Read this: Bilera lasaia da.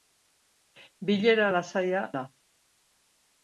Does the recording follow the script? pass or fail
pass